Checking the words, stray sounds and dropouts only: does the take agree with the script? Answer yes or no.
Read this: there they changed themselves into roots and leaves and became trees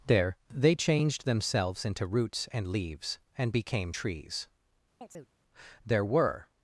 no